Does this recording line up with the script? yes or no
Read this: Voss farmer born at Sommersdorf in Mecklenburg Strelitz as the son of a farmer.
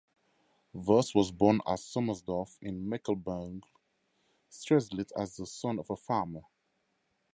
no